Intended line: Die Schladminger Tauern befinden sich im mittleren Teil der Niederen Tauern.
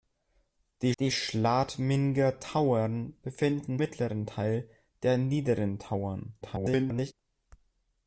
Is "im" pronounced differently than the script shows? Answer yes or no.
yes